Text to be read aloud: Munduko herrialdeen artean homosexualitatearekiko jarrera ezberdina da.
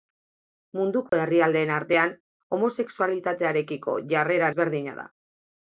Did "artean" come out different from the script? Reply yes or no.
no